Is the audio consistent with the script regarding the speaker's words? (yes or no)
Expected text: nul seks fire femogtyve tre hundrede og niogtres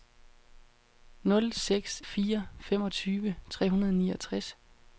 yes